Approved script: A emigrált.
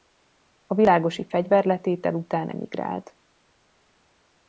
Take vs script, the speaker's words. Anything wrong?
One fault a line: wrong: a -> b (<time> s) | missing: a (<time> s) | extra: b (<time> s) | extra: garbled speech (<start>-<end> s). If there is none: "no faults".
extra: világosi fegyverletétel után (0.8 s)